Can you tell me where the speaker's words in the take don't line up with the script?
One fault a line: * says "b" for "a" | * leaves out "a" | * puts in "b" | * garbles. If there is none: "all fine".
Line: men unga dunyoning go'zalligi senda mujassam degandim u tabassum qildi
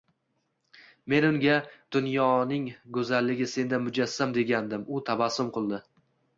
all fine